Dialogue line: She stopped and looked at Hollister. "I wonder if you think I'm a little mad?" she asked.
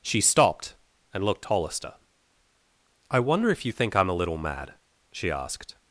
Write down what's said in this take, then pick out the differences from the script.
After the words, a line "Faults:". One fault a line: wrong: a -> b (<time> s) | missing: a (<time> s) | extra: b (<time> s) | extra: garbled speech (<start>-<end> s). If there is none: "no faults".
She stopped and looked Hollister. "I wonder if you think I'm a little mad?" she asked.
Faults:
missing: at (1.4 s)